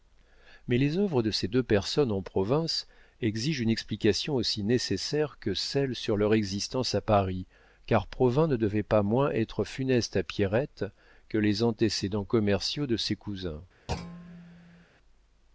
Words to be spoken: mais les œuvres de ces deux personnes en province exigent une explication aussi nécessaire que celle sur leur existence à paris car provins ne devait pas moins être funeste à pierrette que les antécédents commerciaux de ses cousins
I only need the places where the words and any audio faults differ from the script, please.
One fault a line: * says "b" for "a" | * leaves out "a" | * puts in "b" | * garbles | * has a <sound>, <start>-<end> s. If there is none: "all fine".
* has a thud, 13.9-14.9 s